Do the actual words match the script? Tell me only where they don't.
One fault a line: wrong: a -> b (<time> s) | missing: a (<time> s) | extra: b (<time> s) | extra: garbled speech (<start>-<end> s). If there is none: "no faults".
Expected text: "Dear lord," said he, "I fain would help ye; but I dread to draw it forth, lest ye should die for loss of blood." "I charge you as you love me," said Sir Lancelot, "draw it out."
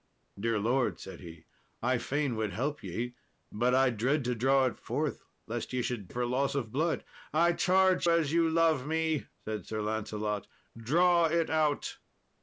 missing: die (6.1 s)
missing: you (8.1 s)